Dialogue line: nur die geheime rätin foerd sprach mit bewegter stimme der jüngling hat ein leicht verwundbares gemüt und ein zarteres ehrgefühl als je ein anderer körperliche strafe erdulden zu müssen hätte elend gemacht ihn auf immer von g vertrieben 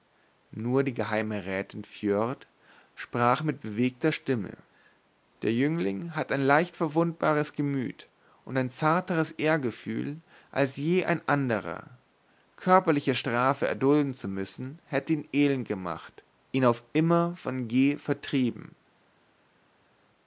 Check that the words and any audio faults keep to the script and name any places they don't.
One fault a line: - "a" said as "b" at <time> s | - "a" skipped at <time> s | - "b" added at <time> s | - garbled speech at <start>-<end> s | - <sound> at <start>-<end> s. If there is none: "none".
- "ihn" added at 15.1 s